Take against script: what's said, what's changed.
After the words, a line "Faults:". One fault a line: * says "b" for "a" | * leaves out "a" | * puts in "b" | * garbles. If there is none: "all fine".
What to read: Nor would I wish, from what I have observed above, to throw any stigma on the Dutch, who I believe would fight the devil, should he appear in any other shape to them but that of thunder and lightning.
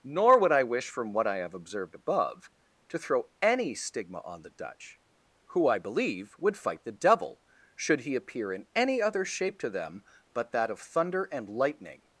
Nor would I wish, from what I have observed above, to throw any stigma on the Dutch, who I believe would fight the devil, should he appear in any other shape to them but that of thunder and lightning.
Faults:
all fine